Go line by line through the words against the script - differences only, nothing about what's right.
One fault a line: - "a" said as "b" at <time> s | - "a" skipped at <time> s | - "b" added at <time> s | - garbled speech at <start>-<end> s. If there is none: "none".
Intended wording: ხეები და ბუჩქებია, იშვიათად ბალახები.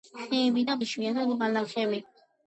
- "ბუჩქებია" skipped at 0.7 s